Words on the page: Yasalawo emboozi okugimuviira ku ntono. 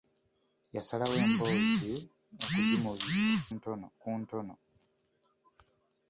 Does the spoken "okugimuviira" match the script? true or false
false